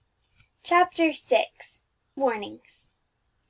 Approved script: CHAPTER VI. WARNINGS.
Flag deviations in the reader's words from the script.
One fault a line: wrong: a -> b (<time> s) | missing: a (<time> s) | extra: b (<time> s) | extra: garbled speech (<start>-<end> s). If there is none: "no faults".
no faults